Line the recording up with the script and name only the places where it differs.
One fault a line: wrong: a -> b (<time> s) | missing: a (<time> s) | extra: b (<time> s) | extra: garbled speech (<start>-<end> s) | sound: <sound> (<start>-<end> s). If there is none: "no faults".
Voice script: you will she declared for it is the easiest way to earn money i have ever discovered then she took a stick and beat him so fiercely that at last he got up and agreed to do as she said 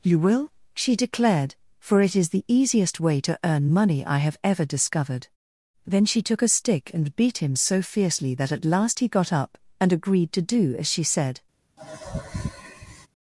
sound: sigh (11.8-13.1 s)